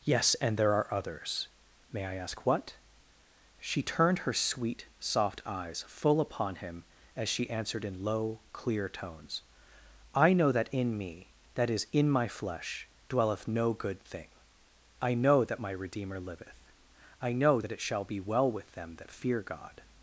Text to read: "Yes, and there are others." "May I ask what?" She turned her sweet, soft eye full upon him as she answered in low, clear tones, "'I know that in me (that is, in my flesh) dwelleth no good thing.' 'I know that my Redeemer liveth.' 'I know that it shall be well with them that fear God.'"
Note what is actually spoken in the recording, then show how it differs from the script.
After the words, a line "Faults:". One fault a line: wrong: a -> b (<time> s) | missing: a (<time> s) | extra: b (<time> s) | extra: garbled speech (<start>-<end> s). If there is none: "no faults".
"Yes, and there are others." "May I ask what?" She turned her sweet, soft eyes full upon him as she answered in low, clear tones, "'I know that in me (that is, in my flesh) dwelleth no good thing.' 'I know that my Redeemer liveth.' 'I know that it shall be well with them that fear God.'"
Faults:
wrong: eye -> eyes (5.5 s)